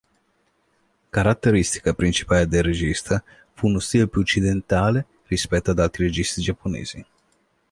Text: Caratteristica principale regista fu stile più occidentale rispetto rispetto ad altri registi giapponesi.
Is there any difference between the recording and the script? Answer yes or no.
yes